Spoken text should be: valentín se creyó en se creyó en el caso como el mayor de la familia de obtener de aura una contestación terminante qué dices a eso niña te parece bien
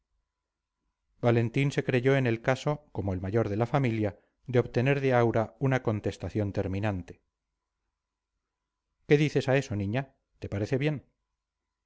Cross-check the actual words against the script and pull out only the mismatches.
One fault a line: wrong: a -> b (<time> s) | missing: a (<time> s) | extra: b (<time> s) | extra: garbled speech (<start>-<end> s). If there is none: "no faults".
missing: se creyó en (2.2 s)